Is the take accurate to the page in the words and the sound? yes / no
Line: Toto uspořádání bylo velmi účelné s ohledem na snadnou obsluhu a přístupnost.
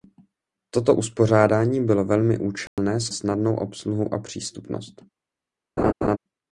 no